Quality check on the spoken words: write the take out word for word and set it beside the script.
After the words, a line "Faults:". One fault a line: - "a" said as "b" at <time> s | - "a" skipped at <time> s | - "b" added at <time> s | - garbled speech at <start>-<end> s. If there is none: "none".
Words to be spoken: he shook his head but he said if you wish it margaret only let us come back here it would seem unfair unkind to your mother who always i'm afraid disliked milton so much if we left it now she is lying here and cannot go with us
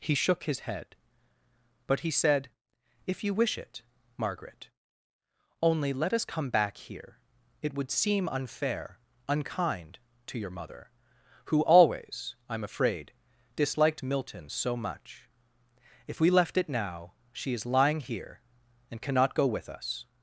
he shook his head but he said if you wish it margaret only let us come back here it would seem unfair unkind to your mother who always i'm afraid disliked milton so much if we left it now she is lying here and cannot go with us
Faults:
none